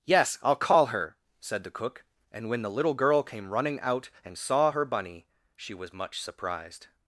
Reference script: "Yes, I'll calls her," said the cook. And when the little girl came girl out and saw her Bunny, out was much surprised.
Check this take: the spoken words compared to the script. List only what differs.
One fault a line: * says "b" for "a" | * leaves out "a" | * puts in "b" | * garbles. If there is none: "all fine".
* says "call" for "calls"
* says "running" for "girl"
* says "she" for "out"